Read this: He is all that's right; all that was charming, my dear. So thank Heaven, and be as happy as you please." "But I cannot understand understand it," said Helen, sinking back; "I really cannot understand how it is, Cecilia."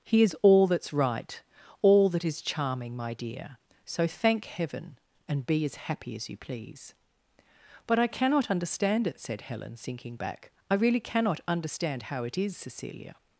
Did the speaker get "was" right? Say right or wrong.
wrong